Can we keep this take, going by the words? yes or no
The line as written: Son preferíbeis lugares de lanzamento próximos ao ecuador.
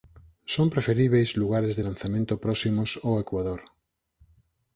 yes